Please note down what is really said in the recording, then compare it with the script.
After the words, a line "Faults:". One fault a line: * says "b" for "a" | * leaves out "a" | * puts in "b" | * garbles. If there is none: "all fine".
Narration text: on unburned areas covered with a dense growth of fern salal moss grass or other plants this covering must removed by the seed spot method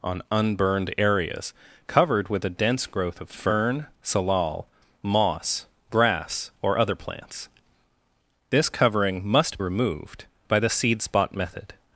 on unburned areas covered with a dense growth of fern salal moss grass or other plants this covering must removed by the seed spot method
Faults:
all fine